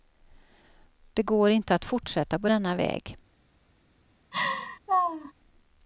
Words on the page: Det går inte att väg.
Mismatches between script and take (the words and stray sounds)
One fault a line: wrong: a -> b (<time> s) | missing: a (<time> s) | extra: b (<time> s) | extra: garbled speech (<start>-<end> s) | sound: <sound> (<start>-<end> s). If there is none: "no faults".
extra: fortsätta på denna (1.9 s)
sound: laugh (4.3-5.3 s)